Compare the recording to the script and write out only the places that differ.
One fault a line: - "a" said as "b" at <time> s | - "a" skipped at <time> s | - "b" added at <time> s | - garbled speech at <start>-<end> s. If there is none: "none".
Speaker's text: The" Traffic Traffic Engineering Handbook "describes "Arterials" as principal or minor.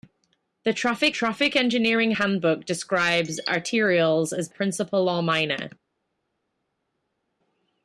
none